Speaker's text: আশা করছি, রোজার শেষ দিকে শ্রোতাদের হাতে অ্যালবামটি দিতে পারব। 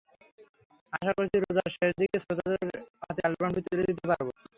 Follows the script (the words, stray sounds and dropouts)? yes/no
no